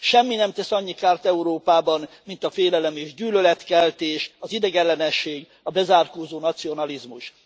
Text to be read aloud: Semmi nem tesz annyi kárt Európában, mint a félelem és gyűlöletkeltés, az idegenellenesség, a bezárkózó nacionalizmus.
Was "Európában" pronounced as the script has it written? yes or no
yes